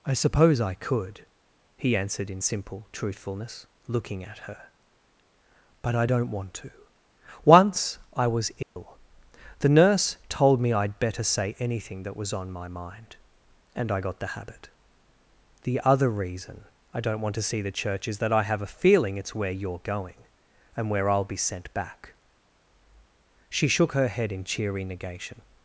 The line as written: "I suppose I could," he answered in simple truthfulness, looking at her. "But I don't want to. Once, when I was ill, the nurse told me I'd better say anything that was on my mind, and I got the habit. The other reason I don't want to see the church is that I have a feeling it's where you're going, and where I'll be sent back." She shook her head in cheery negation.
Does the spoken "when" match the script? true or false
false